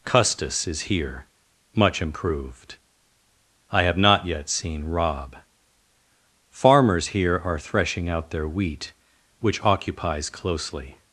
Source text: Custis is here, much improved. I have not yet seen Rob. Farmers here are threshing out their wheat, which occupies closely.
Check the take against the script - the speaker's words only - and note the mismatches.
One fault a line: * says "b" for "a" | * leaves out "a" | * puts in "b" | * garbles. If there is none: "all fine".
all fine